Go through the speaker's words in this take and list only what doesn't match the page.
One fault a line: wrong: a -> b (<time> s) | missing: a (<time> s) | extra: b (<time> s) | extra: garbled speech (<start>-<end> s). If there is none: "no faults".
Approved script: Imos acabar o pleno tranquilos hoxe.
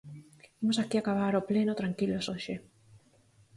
extra: aquí (0.8 s)